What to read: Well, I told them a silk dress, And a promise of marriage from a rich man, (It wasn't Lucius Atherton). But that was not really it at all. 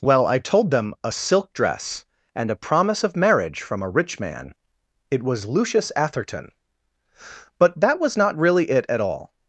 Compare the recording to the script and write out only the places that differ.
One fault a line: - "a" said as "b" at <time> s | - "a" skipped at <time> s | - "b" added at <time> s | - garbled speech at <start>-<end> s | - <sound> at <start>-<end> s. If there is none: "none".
- "wasn't" said as "was" at 5.2 s